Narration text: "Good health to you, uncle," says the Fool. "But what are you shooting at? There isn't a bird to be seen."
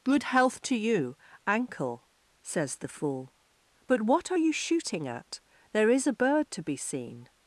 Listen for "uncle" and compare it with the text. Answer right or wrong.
wrong